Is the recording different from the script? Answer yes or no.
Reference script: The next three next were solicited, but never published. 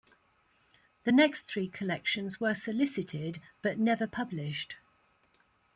yes